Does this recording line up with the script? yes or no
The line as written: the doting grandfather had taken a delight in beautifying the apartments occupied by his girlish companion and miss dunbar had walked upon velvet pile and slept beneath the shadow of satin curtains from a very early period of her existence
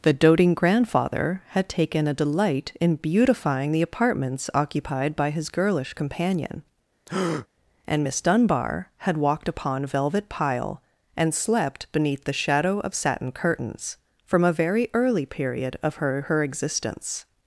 no